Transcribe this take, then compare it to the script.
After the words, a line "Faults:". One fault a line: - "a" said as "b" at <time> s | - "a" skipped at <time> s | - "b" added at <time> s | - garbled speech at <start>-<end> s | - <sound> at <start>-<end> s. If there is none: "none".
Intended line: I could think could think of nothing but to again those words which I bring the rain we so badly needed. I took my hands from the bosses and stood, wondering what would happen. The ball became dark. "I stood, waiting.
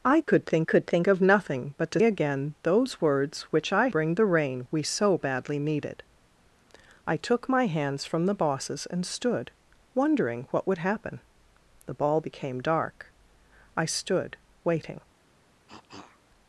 I could think could think of nothing but to again those words which I bring the rain we so badly needed. I took my hands from the bosses and stood, wondering what would happen. The ball became dark. "I stood, waiting.
Faults:
- dropout at 0.2-0.3 s
- cough at 15.7-16.2 s